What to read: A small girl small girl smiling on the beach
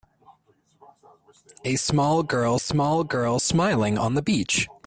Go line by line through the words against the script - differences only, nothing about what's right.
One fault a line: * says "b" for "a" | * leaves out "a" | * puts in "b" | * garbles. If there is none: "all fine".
all fine